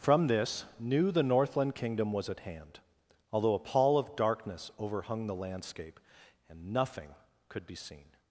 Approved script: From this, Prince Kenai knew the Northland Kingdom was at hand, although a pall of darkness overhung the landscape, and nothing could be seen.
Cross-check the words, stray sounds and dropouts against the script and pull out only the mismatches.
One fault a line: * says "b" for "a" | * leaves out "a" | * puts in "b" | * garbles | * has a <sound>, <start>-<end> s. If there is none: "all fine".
* leaves out "Prince Kenai"